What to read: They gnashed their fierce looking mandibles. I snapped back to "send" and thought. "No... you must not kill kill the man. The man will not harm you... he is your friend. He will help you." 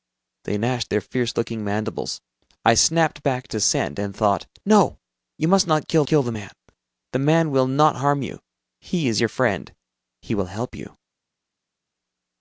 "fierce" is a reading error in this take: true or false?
false